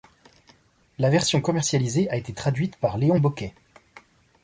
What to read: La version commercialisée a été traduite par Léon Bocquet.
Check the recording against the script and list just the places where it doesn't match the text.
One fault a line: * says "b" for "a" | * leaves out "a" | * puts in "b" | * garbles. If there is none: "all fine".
all fine